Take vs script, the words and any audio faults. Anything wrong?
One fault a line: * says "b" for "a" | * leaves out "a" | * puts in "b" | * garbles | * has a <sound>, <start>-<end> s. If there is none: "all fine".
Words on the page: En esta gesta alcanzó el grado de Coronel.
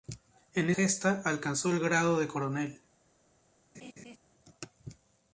* leaves out "esta"
* has a laugh, 3.7-4.2 s